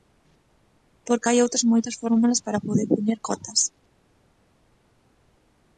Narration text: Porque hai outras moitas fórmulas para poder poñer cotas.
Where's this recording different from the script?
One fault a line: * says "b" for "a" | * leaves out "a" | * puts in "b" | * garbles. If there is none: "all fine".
all fine